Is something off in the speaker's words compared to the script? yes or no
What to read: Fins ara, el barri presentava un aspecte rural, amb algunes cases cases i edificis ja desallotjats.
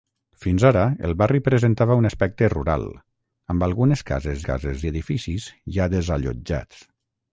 no